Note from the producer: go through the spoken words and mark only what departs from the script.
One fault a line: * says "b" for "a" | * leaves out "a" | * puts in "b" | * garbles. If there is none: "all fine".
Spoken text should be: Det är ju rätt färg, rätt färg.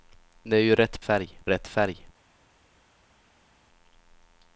all fine